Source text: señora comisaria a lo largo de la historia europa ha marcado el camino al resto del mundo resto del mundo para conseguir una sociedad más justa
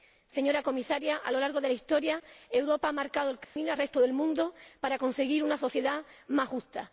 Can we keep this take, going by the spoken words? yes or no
no